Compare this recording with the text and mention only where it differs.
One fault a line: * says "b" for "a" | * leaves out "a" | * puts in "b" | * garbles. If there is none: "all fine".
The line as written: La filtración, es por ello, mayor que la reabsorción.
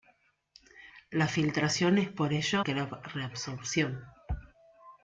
* leaves out "mayor"